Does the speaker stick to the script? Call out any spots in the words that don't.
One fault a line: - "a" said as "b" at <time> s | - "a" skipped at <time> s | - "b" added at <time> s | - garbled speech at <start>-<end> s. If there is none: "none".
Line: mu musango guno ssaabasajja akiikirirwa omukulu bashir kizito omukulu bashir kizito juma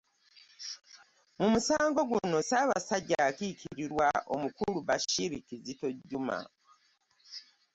- "omukulu bashir kizito" skipped at 5.9 s